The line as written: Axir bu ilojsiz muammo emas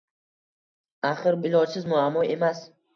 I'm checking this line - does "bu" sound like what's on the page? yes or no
no